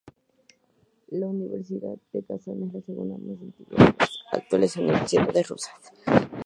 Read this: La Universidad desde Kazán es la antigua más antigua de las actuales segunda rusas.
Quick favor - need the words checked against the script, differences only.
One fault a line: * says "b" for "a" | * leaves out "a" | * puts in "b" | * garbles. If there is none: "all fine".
* says "de" for "desde"
* says "segunda" for "antigua"
* says "universidades" for "segunda"